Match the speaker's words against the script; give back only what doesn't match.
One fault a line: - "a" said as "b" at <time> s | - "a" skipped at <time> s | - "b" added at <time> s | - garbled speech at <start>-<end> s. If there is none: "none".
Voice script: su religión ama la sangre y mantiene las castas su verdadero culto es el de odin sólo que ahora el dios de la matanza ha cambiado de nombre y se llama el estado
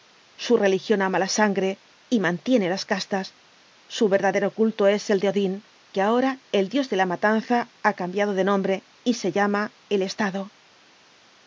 - "sólo" skipped at 5.7 s